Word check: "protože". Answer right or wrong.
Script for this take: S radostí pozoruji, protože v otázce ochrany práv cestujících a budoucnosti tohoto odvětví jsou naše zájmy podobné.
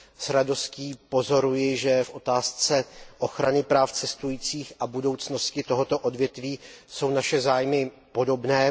wrong